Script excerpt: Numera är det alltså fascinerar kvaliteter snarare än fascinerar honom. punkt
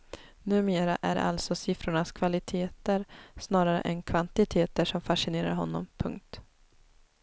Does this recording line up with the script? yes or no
no